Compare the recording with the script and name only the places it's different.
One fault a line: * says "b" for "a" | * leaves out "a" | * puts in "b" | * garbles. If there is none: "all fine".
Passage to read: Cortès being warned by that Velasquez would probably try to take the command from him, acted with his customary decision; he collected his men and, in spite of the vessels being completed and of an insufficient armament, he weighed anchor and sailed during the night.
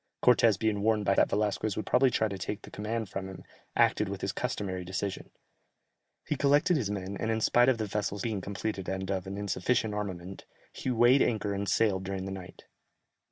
all fine